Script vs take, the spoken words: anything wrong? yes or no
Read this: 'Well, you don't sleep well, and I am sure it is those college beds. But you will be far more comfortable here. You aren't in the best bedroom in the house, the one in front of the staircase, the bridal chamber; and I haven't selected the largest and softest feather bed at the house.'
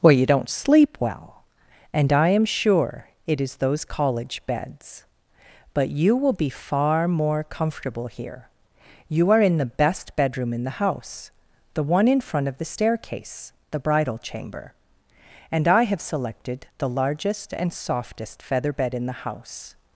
yes